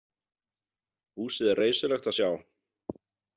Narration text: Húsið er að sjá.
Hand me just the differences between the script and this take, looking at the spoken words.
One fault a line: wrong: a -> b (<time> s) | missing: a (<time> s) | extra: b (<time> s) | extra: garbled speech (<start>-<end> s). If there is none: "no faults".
extra: reisulegt (1.6 s)